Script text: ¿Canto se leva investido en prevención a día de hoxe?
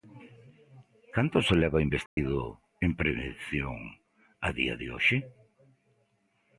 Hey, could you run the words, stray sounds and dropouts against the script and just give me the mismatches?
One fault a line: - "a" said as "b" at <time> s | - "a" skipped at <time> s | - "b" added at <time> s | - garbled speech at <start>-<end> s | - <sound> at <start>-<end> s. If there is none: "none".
- dropout at 2.1-2.2 s